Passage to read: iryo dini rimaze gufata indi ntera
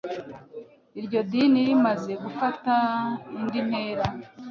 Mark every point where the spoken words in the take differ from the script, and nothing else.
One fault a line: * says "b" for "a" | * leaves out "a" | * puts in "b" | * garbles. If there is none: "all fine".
all fine